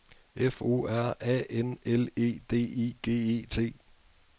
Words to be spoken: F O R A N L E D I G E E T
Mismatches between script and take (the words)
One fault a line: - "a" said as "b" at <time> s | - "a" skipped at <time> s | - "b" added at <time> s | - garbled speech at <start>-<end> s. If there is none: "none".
- "E" skipped at 3.5 s